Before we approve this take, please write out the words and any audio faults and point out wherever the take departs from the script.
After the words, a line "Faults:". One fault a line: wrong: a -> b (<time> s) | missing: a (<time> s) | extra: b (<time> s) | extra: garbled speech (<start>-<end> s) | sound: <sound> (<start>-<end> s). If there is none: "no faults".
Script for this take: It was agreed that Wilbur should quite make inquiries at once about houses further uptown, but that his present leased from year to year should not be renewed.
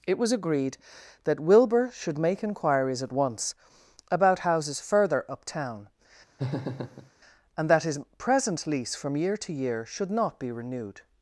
It was agreed that Wilbur should make inquiries at once about houses further uptown, and that his present lease from year to year should not be renewed.
Faults:
missing: quite (2.2 s)
sound: laugh (6.4-7.1 s)
wrong: but -> and (7.6 s)
wrong: leased -> lease (8.7 s)